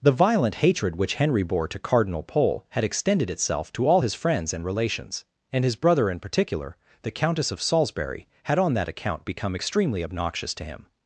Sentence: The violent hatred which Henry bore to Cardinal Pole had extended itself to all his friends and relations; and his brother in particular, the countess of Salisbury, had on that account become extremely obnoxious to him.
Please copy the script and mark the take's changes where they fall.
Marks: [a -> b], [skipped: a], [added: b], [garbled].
The violent hatred which Henry bore to Cardinal Pole had extended itself to all his friends and relations; and his brother in particular, the countess of Salisbury, had on that account become extremely obnoxious to him.